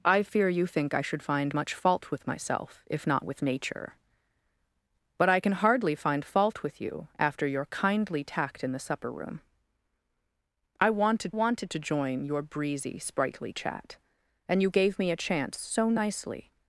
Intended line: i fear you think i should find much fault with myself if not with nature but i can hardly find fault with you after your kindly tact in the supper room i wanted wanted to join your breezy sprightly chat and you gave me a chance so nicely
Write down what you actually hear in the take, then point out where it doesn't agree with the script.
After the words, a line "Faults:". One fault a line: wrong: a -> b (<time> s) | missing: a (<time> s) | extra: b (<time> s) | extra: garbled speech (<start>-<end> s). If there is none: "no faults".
i fear you think i should find much fault with myself if not with nature but i can hardly find fault with you after your kindly tact in the supper room i wanted wanted to join your breezy sprightly chat and you gave me a chance so nicely
Faults:
no faults